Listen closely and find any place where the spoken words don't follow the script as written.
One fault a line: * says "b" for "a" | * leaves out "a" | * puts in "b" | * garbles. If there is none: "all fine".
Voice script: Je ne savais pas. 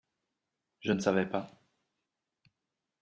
all fine